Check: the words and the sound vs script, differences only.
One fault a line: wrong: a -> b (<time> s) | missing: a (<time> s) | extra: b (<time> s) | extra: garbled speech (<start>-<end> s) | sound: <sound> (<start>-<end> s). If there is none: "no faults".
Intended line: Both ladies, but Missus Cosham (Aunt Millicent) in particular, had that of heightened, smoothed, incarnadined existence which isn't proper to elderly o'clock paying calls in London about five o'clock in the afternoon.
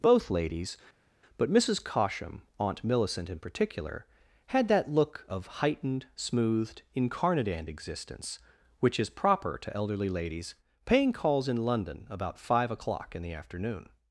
extra: look (4.9 s)
wrong: isn't -> is (9.0 s)
wrong: o'clock -> ladies (10.1 s)